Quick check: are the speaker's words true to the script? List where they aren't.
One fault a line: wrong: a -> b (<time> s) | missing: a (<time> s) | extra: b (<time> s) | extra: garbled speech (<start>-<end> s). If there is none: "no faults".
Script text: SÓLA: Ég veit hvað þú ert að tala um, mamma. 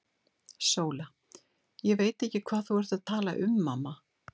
extra: ekki (2.3 s)